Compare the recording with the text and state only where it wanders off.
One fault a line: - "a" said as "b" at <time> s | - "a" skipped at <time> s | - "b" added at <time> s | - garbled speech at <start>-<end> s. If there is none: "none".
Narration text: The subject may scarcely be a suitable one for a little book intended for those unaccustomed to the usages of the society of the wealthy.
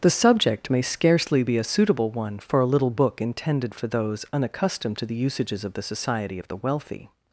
none